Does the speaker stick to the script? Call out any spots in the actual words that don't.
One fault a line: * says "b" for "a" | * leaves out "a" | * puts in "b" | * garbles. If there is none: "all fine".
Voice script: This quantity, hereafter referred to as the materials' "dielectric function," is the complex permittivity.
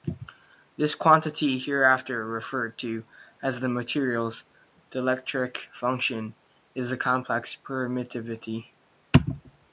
all fine